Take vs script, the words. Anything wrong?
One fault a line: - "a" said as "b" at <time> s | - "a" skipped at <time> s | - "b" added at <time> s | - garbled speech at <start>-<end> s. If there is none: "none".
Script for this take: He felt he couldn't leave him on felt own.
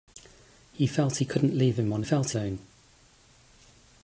none